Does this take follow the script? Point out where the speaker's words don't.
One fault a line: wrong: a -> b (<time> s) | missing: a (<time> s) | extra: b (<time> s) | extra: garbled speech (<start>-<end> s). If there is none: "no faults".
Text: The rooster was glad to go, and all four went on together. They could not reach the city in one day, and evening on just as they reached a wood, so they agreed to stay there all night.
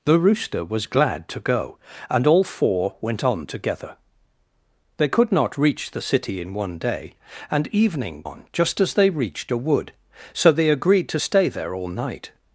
no faults